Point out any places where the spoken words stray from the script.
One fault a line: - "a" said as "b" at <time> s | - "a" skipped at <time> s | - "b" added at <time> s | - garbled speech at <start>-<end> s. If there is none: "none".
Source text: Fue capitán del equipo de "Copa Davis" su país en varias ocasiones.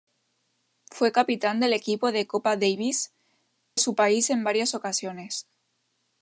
none